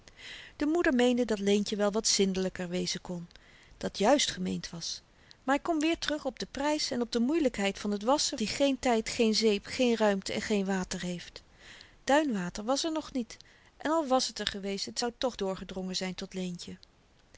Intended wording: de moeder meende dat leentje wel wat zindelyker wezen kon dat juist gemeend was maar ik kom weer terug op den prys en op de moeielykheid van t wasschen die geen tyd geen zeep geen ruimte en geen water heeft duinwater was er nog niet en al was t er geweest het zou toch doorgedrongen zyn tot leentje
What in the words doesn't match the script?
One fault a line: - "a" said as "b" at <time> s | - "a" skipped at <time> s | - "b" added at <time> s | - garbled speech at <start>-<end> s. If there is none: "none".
none